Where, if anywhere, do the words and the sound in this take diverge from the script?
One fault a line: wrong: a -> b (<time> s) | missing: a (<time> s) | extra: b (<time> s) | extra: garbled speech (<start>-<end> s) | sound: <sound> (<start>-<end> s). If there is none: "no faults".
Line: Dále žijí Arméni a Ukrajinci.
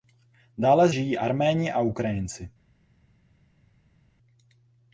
no faults